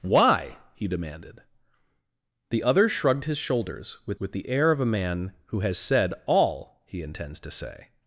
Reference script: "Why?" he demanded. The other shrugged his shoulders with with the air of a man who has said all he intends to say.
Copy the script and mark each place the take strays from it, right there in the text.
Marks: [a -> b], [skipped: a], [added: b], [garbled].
"Why?" he demanded. The other shrugged his shoulders with with the air of a man who has said all he intends to say.